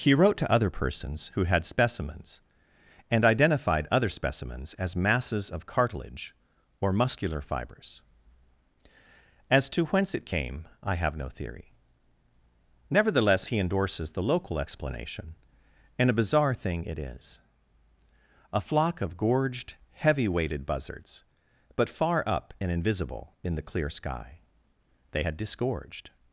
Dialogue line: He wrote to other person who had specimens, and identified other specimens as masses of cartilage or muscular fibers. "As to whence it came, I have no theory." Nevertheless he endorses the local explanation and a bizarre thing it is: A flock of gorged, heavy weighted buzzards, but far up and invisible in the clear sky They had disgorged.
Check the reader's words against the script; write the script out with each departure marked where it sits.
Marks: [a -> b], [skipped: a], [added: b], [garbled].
He wrote to other [person -> persons] who had specimens, and identified other specimens as masses of cartilage or muscular fibers. "As to whence it came, I have no theory." Nevertheless he endorses the local explanation and a bizarre thing it is: A flock of gorged, heavy weighted buzzards, but far up and invisible in the clear sky They had disgorged.